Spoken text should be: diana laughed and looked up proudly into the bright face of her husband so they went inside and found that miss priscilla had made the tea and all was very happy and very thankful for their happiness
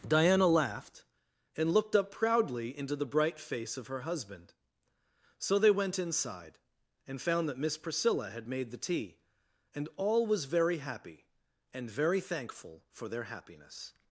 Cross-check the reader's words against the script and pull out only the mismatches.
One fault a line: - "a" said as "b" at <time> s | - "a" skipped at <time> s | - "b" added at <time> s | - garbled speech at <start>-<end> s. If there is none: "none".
none